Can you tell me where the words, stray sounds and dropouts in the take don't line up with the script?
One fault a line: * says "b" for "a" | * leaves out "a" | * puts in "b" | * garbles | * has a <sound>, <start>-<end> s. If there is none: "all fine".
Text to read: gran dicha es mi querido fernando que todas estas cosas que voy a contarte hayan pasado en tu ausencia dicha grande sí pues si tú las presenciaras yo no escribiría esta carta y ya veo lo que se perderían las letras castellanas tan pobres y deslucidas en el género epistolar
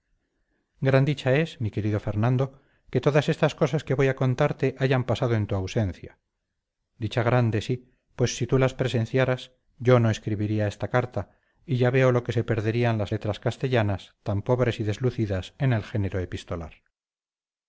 all fine